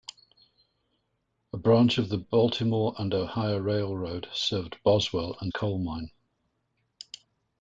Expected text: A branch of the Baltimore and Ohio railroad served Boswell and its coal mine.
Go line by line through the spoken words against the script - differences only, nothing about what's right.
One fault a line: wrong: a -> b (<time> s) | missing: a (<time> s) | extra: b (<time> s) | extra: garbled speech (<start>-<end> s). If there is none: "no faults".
missing: its (5.5 s)